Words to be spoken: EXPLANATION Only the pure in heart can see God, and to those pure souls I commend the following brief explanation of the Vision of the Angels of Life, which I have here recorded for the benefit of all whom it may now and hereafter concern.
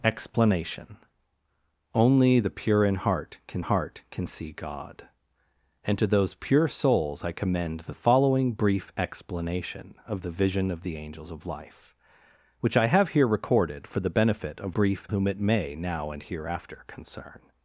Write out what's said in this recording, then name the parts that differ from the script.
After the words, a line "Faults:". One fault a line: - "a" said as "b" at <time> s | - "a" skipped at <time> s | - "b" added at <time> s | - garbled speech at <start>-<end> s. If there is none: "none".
EXPLANATION Only the pure in heart can heart can see God, and to those pure souls I commend the following brief explanation of the Vision of the Angels of Life, which I have here recorded for the benefit of brief whom it may now and hereafter concern.
Faults:
- "heart can" added at 3.6 s
- "all" said as "brief" at 14.7 s